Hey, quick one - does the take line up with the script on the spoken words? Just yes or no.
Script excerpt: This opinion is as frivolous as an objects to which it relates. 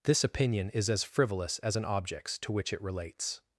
yes